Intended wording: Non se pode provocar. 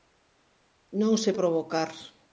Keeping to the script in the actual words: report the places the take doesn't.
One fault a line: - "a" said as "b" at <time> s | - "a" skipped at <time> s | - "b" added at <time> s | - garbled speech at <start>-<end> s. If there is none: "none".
- "pode" skipped at 1.3 s